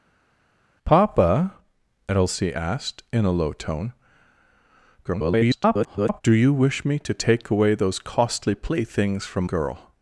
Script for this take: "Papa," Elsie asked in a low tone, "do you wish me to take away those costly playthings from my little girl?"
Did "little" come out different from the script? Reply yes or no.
yes